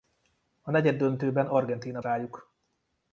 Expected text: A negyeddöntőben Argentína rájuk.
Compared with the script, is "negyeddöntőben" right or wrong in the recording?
right